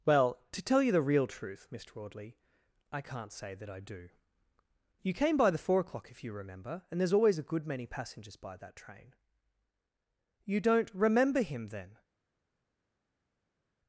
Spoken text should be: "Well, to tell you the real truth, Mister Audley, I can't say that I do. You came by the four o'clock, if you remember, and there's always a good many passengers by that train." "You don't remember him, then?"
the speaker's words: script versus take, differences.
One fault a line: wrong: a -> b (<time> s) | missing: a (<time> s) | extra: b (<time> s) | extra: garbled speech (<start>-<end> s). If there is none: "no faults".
no faults